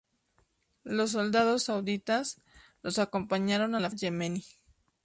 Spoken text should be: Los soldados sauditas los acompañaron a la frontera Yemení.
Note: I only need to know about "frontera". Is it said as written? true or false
false